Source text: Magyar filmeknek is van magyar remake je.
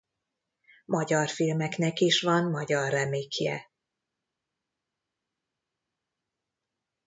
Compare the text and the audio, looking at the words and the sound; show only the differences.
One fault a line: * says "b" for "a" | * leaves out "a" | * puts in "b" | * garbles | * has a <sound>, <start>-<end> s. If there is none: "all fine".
all fine